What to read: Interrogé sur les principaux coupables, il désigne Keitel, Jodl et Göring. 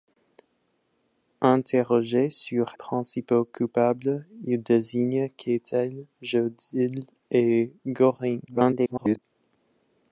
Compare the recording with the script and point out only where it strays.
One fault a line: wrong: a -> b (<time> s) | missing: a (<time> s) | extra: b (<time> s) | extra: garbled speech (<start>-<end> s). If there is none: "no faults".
missing: les (2.7 s)
extra: garbled speech (8.5-9.2 s)